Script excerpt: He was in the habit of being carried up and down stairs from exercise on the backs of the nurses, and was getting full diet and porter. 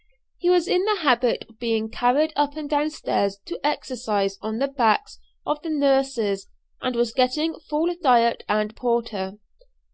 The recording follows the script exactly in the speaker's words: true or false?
false